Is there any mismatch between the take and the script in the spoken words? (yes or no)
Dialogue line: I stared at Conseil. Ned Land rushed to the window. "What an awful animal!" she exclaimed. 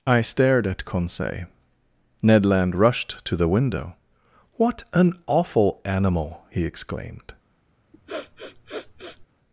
yes